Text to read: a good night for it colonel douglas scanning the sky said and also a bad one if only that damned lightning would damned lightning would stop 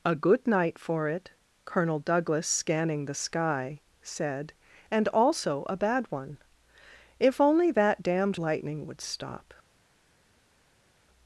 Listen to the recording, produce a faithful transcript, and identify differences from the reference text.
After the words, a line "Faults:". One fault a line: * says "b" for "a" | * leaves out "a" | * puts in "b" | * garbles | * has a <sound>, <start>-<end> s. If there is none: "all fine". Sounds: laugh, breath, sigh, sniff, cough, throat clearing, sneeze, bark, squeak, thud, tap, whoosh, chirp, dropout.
a good night for it colonel douglas scanning the sky said and also a bad one if only that damned lightning would stop
Faults:
* leaves out "damned lightning would"